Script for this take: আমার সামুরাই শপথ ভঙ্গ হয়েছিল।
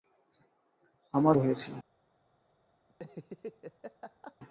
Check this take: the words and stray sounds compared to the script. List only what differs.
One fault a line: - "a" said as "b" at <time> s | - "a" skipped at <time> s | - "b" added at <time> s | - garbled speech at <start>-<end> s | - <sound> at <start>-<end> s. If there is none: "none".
- "সামুরাই শপথ ভঙ্গ" skipped at 1.4 s
- laugh at 2.9-4.4 s